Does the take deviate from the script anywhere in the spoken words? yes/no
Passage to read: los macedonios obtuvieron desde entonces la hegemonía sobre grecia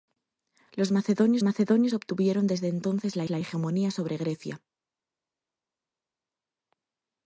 yes